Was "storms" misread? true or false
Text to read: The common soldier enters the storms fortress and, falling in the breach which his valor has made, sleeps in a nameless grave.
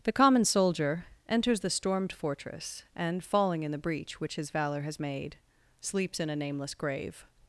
true